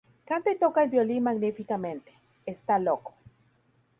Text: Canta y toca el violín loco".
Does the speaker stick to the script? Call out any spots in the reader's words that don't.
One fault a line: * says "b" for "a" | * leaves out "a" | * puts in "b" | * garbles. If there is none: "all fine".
* puts in "magníficamente está"